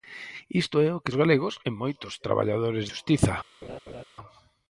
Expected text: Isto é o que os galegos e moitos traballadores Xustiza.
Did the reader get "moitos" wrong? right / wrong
right